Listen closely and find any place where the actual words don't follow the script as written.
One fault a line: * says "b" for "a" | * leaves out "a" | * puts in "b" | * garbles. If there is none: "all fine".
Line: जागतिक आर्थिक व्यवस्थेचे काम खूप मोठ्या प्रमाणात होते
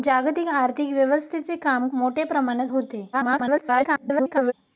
* leaves out "खूप"
* garbles